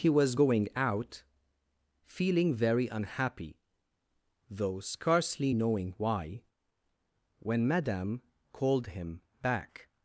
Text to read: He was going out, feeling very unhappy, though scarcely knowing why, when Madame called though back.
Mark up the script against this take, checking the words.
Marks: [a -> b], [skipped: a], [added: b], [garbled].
He was going out, feeling very unhappy, though scarcely knowing why, when Madame called [though -> him] back.